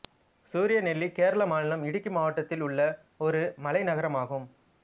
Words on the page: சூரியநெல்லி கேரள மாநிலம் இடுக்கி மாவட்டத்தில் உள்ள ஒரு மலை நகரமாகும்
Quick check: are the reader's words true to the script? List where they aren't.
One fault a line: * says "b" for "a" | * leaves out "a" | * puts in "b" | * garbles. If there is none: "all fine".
all fine